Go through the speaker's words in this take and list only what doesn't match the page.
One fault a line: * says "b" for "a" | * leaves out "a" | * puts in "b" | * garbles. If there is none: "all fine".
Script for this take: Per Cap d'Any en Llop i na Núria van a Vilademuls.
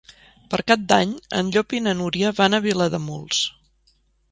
all fine